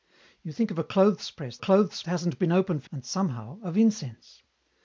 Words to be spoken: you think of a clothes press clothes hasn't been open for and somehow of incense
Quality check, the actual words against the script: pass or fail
pass